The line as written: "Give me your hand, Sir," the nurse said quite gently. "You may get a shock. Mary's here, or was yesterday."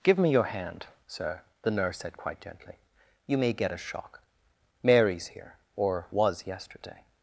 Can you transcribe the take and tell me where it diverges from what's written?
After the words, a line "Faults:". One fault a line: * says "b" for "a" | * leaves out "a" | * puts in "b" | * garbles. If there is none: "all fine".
"Give me your hand, Sir," the nurse said quite gently. "You may get a shock. Mary's here, or was yesterday."
Faults:
all fine